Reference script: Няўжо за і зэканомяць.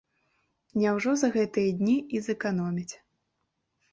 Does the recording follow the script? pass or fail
fail